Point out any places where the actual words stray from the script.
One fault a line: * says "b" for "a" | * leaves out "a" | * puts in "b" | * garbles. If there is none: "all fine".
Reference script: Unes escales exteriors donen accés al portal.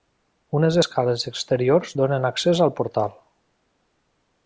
all fine